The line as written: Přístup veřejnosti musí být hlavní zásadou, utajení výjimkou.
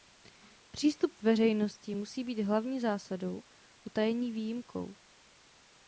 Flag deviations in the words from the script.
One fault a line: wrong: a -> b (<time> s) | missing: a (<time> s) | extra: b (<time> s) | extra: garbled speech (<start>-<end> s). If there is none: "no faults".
no faults